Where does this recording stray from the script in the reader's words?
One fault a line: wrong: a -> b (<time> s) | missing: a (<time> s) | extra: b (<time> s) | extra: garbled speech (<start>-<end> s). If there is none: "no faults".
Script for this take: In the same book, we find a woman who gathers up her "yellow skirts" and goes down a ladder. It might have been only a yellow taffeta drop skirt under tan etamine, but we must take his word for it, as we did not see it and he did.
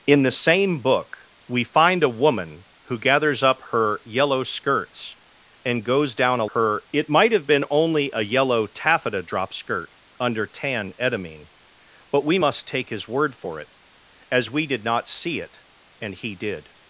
wrong: ladder -> her (6.5 s)